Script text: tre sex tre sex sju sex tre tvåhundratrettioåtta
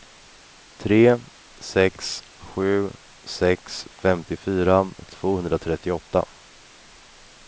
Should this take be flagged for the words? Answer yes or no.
yes